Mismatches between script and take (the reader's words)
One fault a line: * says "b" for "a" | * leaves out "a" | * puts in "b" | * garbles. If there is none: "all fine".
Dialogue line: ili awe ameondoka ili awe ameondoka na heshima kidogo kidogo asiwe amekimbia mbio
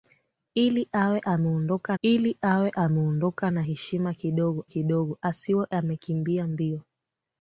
all fine